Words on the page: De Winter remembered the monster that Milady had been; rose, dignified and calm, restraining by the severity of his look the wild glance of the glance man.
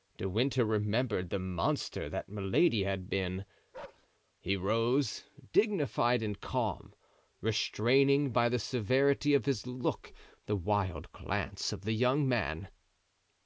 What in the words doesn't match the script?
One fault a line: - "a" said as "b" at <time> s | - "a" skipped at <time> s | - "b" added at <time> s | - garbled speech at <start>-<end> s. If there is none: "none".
- "he" added at 4.4 s
- "glance" said as "young" at 11.9 s